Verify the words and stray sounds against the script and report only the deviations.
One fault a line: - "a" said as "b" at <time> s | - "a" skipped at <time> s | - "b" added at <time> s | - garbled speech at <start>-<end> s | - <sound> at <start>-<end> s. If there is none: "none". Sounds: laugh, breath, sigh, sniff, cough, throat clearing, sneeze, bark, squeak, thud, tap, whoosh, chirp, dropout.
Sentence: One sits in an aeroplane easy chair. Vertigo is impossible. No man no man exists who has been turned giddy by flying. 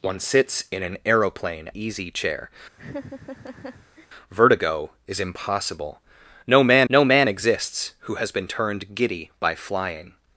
- laugh at 2.8-4.1 s